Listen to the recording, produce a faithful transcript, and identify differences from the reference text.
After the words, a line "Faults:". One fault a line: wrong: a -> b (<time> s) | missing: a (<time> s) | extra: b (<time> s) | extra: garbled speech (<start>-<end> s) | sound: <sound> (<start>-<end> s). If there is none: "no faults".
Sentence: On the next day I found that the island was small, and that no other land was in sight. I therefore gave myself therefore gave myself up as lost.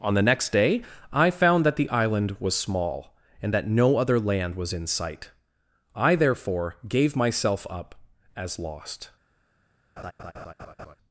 On the next day I found that the island was small, and that no other land was in sight. I therefore gave myself up as lost.
Faults:
missing: therefore gave myself (7.7 s)
sound: laugh (10.0-11.0 s)